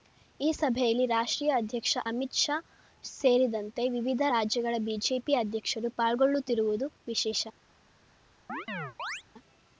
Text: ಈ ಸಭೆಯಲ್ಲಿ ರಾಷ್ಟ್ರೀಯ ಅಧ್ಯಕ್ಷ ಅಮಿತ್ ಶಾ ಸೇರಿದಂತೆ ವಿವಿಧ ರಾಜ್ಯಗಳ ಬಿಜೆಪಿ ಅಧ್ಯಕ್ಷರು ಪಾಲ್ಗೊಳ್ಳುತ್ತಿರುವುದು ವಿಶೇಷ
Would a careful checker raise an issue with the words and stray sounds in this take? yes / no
yes